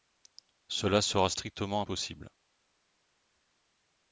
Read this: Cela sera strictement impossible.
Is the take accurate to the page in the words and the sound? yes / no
yes